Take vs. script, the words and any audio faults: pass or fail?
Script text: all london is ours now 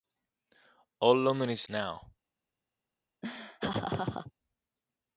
fail